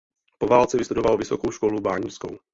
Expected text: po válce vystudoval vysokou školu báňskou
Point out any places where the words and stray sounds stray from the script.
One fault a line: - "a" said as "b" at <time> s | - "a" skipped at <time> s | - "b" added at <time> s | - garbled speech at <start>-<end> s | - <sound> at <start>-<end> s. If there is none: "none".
none